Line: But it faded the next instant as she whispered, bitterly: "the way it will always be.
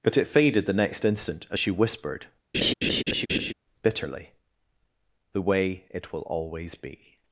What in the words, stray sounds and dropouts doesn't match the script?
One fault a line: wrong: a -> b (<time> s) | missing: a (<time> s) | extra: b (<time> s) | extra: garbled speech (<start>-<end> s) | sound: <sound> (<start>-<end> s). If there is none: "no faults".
sound: laugh (2.5-3.5 s)